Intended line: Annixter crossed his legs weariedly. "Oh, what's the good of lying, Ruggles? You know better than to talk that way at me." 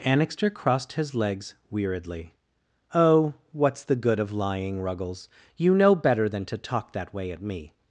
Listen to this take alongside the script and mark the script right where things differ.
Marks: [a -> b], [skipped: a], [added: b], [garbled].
Annixter crossed his legs weariedly. "Oh, what's the good of lying, Ruggles? You know better than to talk that way at me."